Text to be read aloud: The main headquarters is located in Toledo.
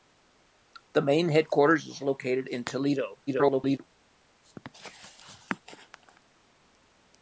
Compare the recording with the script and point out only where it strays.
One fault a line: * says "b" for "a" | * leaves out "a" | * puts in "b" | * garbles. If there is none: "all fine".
* garbles